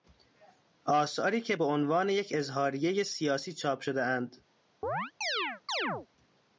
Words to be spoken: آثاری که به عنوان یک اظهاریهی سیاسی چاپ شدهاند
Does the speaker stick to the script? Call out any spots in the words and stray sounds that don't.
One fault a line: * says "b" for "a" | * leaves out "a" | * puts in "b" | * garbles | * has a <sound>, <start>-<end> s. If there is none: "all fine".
* has a chirp, 4.8-6.1 s